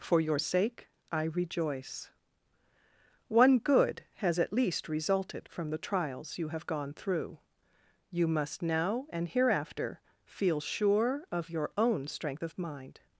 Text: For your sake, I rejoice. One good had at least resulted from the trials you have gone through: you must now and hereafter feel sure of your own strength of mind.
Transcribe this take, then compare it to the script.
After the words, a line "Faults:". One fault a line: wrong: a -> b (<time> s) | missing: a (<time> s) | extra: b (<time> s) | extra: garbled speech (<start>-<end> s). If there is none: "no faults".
For your sake, I rejoice. One good has at least resulted from the trials you have gone through: you must now and hereafter feel sure of your own strength of mind.
Faults:
wrong: had -> has (4.2 s)